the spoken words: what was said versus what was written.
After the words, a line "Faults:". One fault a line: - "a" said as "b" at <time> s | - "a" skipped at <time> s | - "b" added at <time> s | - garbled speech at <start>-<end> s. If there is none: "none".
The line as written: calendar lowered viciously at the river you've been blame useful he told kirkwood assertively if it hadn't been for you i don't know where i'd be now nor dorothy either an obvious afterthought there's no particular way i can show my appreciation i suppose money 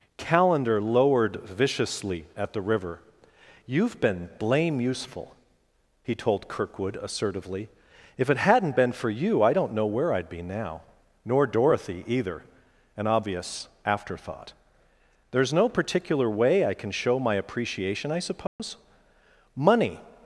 calendar lowered viciously at the river you've been blame useful he told kirkwood assertively if it hadn't been for you i don't know where i'd be now nor dorothy either an obvious afterthought there's no particular way i can show my appreciation i suppose money
Faults:
none